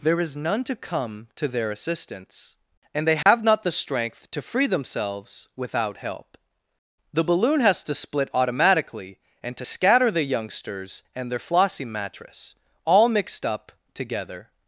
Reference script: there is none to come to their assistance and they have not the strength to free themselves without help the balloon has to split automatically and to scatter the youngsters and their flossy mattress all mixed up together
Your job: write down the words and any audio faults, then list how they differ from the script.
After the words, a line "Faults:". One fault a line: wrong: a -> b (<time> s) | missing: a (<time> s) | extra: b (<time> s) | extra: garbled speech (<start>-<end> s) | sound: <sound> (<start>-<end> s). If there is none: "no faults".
there is none to come to their assistance and they have not the strength to free themselves without help the balloon has to split automatically and to scatter the youngsters and their flossy mattress all mixed up together
Faults:
sound: dropout (3.2-3.3 s)